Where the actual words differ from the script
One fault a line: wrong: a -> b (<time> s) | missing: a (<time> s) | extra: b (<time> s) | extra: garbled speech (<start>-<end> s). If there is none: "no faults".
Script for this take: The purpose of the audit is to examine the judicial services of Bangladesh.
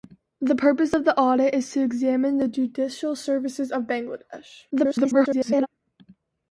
extra: garbled speech (4.7-5.7 s)